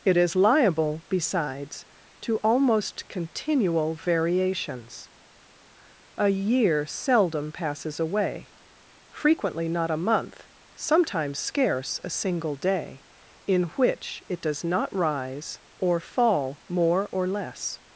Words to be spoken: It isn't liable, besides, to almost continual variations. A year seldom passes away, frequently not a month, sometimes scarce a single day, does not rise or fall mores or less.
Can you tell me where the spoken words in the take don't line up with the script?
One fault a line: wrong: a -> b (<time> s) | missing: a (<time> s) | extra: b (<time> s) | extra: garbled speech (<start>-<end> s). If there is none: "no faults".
wrong: isn't -> is (0.2 s)
extra: in which it (13.5 s)
wrong: mores -> more (16.7 s)